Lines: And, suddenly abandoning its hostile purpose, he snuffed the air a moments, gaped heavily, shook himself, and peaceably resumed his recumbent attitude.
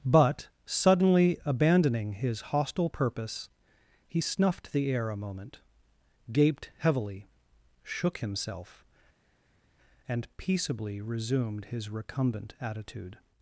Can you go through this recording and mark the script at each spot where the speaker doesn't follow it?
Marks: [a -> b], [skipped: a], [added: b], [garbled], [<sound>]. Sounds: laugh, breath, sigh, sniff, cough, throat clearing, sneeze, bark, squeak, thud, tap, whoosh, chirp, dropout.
[And, -> But] suddenly abandoning [its -> his] hostile purpose, he snuffed the air a [moments, -> moment] gaped heavily, shook himself, and peaceably resumed his recumbent attitude.